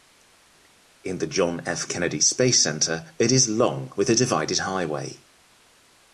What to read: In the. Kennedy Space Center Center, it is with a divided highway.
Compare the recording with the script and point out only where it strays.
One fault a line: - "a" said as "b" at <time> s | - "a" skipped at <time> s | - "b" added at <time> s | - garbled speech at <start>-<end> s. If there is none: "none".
- "John F" added at 1.3 s
- "Center" skipped at 3.1 s
- "long" added at 3.5 s